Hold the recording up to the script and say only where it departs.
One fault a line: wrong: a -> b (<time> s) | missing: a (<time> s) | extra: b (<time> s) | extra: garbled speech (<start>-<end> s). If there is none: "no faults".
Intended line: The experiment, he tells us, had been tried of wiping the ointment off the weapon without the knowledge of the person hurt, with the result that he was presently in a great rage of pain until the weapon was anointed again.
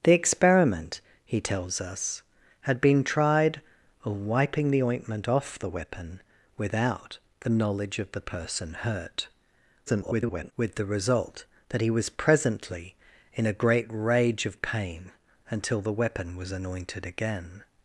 extra: garbled speech (9.9-10.5 s)